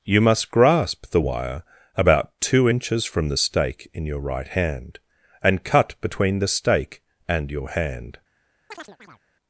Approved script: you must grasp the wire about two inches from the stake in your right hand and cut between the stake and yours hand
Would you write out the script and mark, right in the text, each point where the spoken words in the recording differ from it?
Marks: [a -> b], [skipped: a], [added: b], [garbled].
you must grasp the wire about two inches from the stake in your right hand and cut between the stake and [yours -> your] hand